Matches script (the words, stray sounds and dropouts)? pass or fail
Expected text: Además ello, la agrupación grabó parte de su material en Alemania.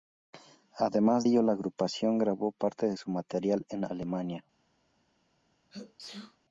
fail